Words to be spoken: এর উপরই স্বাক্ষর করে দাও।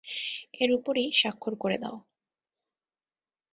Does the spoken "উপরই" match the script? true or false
true